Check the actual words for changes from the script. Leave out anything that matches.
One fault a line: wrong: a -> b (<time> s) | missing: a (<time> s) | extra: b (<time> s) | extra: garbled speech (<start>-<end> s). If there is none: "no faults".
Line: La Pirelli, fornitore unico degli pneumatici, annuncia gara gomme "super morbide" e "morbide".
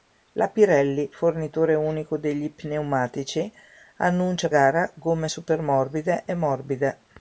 no faults